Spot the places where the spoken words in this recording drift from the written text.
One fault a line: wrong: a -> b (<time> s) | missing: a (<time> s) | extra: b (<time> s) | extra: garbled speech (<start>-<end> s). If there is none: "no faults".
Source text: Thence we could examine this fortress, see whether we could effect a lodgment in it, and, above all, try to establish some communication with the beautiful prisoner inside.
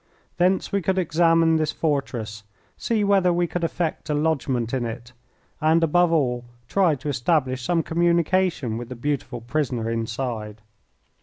no faults